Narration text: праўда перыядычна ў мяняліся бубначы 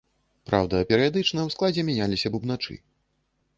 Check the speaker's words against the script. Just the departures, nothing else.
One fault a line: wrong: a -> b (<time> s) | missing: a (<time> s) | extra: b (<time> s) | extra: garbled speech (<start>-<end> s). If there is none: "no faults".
extra: складзе (1.6 s)